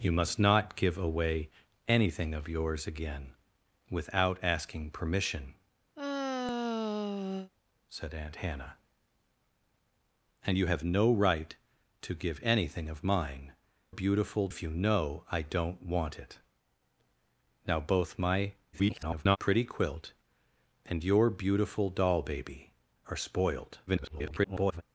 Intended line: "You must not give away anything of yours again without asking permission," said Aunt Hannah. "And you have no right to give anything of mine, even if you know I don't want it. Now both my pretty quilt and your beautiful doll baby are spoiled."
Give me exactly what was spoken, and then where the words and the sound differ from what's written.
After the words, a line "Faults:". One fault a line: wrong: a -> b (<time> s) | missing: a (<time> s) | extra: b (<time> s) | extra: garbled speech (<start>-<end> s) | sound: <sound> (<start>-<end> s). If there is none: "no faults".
"You must not give away anything of yours again without asking permission," said Aunt Hannah. "And you have no right to give anything of mine, beautiful if you know I don't want it. Now both my [garbled] pretty quilt and your beautiful doll baby are spoiled." [garbled]
Faults:
sound: sigh (5.9-7.5 s)
wrong: even -> beautiful (13.9 s)
extra: garbled speech (18.7-19.4 s)
extra: garbled speech (23.9-24.8 s)